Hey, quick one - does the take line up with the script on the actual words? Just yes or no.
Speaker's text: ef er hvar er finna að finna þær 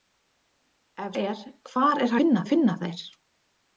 yes